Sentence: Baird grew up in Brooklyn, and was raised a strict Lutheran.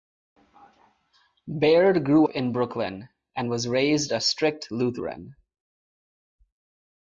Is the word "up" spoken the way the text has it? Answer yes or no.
no